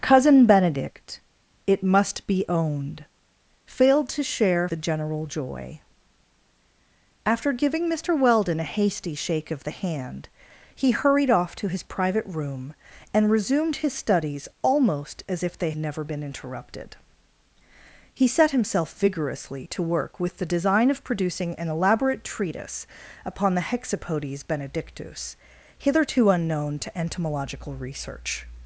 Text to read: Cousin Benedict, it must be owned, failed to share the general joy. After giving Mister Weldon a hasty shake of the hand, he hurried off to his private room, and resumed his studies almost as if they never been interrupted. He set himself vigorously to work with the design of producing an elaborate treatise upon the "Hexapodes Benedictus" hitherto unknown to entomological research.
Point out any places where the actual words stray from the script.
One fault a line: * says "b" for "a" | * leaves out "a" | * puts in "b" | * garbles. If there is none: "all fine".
all fine